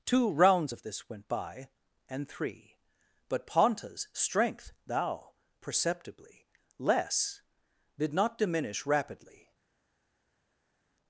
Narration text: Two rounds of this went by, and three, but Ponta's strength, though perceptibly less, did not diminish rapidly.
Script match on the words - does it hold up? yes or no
no